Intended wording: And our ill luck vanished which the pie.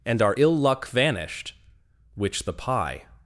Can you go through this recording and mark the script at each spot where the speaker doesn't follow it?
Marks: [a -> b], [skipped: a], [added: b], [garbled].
And our ill luck vanished which the pie.